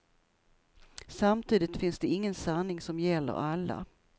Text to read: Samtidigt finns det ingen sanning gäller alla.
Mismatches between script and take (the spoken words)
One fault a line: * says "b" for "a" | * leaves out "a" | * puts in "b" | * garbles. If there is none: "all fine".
* puts in "som"